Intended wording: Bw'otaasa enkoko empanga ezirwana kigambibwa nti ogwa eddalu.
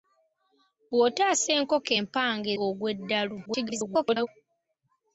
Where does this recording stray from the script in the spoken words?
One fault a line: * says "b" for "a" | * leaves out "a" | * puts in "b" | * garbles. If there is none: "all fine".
* leaves out "ezirwana kigambibwa nti"
* garbles